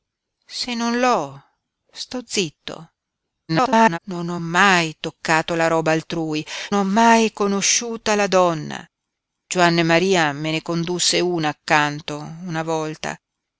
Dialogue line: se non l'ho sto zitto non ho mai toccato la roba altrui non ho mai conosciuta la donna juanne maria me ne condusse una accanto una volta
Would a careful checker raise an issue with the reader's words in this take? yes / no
yes